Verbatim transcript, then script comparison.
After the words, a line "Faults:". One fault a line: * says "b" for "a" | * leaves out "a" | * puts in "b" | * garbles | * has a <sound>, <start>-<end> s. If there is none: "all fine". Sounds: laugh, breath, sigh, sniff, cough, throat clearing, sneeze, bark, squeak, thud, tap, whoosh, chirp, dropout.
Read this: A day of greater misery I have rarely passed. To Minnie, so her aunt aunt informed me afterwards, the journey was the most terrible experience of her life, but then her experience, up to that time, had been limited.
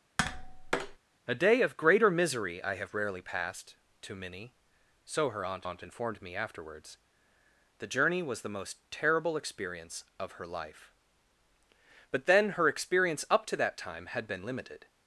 A day of greater misery I have rarely passed. To Minnie, so her aunt aunt informed me afterwards, the journey was the most terrible experience of her life, but then her experience, up to that time, had been limited.
Faults:
* has a tap, 0.2-1.0 s